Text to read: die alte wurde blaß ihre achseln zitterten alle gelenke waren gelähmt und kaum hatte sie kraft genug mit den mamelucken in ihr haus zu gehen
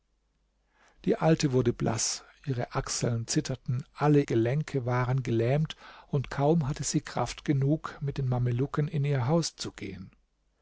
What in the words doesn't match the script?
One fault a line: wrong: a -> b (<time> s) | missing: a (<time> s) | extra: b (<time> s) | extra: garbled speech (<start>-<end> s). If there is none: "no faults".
no faults